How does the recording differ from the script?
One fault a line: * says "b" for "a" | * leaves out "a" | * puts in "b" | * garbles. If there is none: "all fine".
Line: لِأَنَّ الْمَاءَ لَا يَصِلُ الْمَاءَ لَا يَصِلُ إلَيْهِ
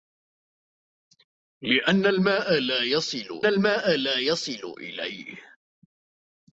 all fine